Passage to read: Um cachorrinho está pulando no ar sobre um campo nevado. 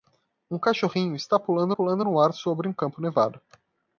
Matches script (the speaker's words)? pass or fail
fail